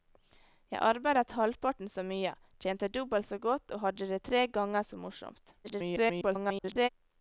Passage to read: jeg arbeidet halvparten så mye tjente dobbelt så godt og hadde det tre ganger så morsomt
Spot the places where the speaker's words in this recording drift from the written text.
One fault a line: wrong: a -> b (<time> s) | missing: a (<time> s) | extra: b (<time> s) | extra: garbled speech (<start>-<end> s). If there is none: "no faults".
extra: garbled speech (5.6-6.9 s)